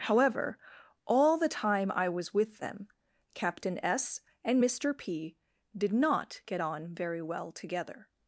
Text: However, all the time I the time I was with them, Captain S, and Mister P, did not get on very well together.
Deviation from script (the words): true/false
true